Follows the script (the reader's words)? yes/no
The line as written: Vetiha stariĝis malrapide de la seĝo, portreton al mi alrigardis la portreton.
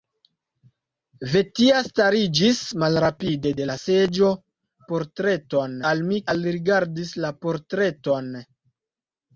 yes